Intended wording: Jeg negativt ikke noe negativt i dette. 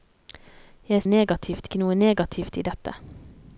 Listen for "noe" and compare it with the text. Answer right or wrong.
right